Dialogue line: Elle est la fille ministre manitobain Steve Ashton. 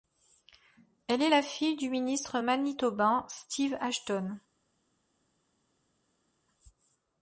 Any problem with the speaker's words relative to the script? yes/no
yes